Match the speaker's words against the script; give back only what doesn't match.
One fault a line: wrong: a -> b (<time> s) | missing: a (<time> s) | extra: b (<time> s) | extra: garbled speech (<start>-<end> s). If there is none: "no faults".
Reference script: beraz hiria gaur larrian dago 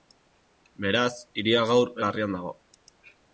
no faults